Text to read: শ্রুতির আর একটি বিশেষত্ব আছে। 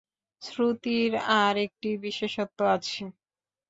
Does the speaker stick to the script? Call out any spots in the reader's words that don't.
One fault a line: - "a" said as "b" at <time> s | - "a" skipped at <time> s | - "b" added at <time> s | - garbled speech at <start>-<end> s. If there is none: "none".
none